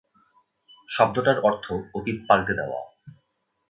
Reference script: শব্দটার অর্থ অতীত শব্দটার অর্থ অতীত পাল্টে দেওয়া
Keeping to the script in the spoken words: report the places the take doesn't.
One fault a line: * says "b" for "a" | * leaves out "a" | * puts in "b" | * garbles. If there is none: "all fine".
* leaves out "শব্দটার অর্থ অতীত"